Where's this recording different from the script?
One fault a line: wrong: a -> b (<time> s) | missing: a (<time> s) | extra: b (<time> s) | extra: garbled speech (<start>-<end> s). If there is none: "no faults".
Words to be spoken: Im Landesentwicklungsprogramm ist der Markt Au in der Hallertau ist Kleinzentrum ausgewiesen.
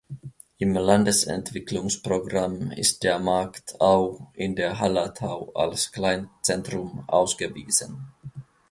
wrong: ist -> als (5.5 s)